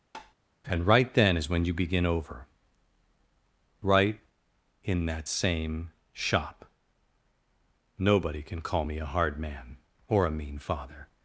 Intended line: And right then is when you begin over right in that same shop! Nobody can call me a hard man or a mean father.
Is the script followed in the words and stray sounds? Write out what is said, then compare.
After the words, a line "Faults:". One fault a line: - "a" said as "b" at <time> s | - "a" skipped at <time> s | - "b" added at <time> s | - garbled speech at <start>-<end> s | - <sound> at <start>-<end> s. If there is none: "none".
And right then is when you begin over right in that same shop! Nobody can call me a hard man or a mean father.
Faults:
- tap at 0.1-0.3 s